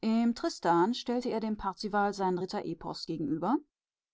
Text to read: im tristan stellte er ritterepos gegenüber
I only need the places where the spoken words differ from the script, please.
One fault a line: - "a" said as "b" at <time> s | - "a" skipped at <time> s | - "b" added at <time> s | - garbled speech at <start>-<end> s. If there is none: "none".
- "dem parzival sein" added at 1.4 s